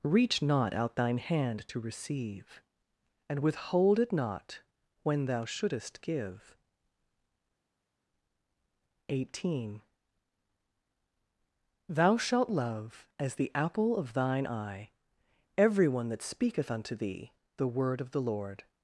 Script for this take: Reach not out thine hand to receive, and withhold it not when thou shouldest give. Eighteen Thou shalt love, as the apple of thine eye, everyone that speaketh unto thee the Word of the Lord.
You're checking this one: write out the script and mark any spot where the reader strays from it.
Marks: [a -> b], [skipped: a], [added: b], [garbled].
Reach not out thine hand to receive, and withhold it not when thou shouldest give. Eighteen Thou shalt love, as the apple of thine eye, everyone that speaketh unto thee the Word of the Lord.